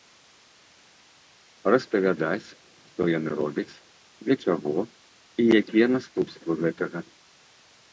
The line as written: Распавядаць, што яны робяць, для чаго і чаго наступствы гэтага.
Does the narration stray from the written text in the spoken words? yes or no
yes